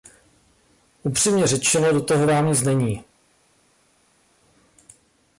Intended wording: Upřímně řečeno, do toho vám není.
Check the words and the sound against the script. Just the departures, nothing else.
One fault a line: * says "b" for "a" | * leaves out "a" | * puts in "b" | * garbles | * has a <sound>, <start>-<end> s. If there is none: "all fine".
* puts in "nic"